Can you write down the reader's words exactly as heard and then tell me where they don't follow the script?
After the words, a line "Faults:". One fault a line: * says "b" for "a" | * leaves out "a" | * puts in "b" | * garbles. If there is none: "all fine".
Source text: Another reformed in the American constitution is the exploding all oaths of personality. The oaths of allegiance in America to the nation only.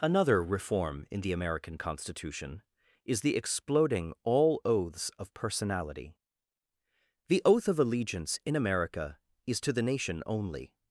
Another reform in the American constitution is the exploding all oaths of personality. The oath of allegiance in America is to the nation only.
Faults:
* says "reform" for "reformed"
* says "oath" for "oaths"
* puts in "is"